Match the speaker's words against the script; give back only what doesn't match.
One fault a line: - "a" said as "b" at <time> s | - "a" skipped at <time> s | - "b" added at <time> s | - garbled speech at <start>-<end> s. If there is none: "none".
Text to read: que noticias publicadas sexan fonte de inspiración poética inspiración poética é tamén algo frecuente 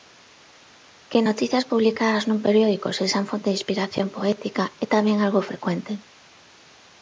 - "nun periódico" added at 2.3 s
- "inspiración poética" skipped at 4.6 s